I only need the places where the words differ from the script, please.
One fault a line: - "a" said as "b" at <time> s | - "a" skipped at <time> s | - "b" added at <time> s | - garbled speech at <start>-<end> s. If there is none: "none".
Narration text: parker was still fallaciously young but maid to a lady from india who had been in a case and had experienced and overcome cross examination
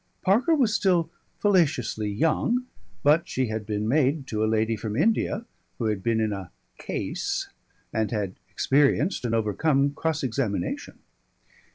- "she had been" added at 3.3 s